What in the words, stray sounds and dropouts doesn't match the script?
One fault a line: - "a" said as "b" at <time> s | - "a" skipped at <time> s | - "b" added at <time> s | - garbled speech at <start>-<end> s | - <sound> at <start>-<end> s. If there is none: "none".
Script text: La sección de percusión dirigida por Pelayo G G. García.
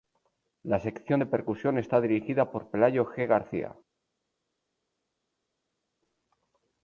- "está" added at 1.8 s
- "G" skipped at 3.3 s